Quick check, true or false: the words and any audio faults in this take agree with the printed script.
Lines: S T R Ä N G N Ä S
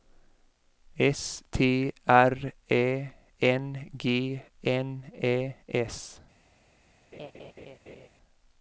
false